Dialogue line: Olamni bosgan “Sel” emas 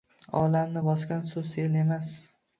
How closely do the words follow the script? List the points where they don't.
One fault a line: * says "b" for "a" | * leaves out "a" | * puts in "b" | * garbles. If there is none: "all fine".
* puts in "suv"